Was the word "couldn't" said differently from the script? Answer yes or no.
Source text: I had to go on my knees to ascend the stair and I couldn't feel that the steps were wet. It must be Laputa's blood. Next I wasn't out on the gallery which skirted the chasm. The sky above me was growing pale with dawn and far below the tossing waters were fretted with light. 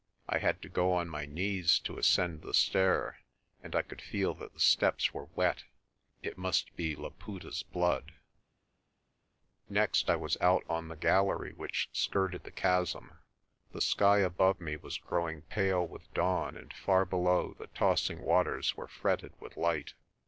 yes